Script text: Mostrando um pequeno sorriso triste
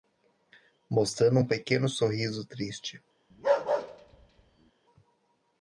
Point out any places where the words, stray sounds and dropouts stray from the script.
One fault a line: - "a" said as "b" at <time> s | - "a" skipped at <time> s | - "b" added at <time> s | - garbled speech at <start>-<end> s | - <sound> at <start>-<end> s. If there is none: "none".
- bark at 3.3-4.7 s